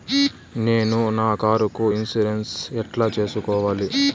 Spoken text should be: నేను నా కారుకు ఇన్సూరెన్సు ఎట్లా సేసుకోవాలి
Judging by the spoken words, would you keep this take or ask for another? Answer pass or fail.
pass